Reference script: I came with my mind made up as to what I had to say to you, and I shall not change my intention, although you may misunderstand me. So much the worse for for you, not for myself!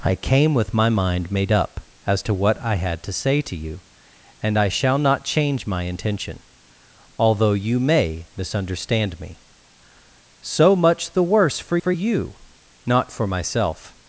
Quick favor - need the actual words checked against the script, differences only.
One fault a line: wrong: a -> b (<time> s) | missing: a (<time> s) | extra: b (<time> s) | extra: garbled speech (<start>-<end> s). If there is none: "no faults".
no faults